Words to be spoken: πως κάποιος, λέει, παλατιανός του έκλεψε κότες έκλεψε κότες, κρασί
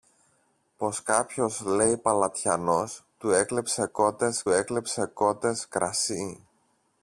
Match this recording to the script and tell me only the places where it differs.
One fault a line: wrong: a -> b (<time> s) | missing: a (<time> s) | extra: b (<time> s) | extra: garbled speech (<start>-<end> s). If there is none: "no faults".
no faults